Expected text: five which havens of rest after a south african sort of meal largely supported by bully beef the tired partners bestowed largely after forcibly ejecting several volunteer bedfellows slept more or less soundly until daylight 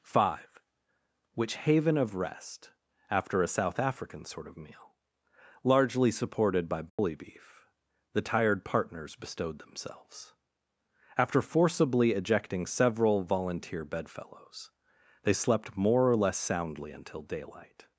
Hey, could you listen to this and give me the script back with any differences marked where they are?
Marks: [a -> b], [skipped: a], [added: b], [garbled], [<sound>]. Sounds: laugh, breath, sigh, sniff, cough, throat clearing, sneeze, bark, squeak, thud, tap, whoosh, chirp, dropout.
five which [havens -> haven] of rest after a south african sort of meal largely supported by bully [dropout] beef the tired partners bestowed [largely -> themselves] after forcibly ejecting several volunteer bedfellows [added: they] slept more or less soundly until daylight